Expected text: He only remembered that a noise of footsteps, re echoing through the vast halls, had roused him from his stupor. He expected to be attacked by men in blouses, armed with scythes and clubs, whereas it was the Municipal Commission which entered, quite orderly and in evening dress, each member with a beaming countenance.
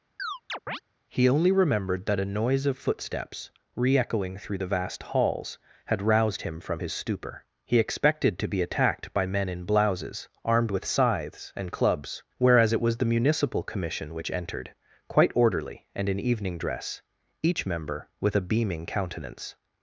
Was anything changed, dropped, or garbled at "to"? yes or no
no